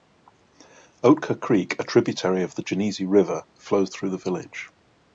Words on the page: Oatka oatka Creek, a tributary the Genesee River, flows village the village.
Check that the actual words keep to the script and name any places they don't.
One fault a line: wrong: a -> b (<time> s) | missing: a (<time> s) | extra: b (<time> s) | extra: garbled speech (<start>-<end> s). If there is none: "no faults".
missing: oatka (1.4 s)
extra: of (2.4 s)
wrong: village -> through (4.0 s)